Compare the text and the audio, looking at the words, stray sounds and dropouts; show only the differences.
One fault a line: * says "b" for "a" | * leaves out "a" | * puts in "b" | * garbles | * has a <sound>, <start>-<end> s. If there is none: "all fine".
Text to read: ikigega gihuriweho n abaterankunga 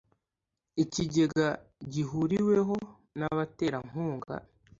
all fine